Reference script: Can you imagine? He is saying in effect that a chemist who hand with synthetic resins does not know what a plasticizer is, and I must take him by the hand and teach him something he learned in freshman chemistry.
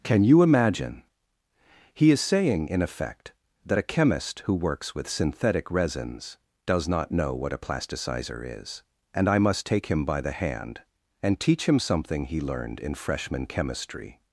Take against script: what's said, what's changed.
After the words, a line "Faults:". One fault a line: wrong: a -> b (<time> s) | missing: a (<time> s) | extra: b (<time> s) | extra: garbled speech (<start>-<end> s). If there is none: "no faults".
Can you imagine? He is saying in effect that a chemist who works with synthetic resins does not know what a plasticizer is, and I must take him by the hand and teach him something he learned in freshman chemistry.
Faults:
wrong: hand -> works (4.5 s)